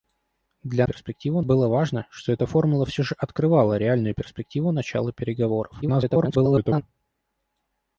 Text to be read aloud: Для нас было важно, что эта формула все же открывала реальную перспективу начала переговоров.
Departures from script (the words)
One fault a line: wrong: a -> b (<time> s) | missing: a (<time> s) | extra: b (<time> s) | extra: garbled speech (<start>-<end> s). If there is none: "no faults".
wrong: нас -> перспективу (0.8 s)
extra: garbled speech (5.8-6.8 s)